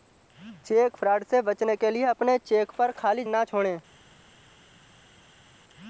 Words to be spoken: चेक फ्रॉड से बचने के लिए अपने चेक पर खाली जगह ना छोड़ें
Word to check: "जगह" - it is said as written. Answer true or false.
false